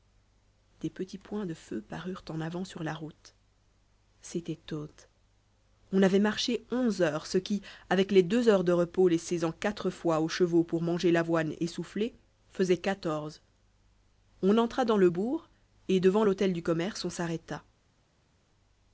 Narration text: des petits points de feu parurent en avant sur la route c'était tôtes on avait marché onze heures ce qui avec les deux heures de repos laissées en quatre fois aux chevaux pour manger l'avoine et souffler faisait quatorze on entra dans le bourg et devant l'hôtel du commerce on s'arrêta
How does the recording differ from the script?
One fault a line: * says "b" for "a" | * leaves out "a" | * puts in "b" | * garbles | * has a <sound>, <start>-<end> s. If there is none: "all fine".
all fine